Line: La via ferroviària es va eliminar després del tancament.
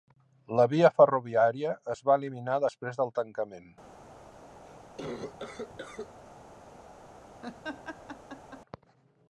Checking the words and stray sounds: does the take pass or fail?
fail